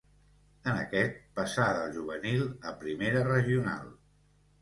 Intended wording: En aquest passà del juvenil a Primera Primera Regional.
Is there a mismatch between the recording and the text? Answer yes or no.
yes